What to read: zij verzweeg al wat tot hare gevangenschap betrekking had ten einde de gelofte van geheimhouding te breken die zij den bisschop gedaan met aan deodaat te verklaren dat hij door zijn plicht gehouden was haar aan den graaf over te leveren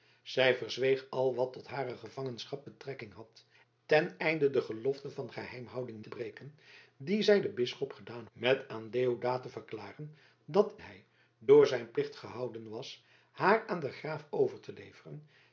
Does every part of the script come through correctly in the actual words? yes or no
yes